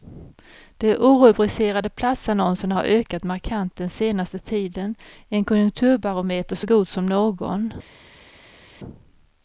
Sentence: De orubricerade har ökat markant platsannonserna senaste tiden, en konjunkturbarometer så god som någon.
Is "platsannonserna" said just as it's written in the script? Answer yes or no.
no